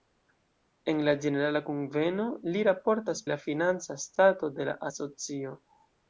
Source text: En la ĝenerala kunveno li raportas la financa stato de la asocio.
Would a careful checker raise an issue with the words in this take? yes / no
no